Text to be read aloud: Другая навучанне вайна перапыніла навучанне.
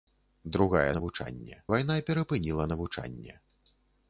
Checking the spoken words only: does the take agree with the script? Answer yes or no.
yes